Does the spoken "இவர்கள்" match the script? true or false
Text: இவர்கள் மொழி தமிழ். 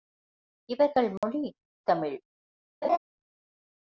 true